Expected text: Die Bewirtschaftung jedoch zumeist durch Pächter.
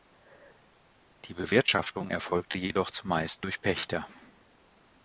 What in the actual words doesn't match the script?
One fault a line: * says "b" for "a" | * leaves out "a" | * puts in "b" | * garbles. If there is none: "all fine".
* puts in "erfolgte"